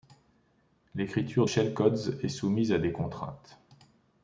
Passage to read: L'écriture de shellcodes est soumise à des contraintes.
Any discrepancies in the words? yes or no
yes